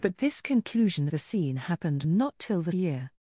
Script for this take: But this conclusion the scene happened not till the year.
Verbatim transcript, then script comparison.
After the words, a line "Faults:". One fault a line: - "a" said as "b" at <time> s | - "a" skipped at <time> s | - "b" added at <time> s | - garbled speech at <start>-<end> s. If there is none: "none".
But this conclusion the scene happened not till the year.
Faults:
none